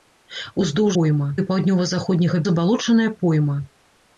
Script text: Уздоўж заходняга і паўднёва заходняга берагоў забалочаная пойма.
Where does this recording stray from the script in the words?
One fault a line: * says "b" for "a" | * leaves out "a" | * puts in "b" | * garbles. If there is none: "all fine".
* says "пойма" for "заходняга"
* leaves out "берагоў"